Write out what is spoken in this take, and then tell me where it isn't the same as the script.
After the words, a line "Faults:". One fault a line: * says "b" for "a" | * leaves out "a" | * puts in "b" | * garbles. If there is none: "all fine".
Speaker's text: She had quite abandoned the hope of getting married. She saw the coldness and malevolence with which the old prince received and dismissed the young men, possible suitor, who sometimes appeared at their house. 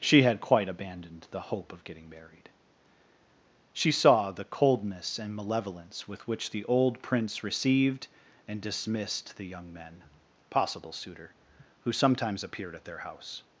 She had quite abandoned the hope of getting married. She saw the coldness and malevolence with which the old prince received and dismissed the young men, possible suitor, who sometimes appeared at their house.
Faults:
all fine